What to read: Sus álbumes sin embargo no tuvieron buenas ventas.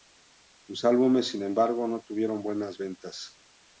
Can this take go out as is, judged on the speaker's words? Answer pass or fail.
pass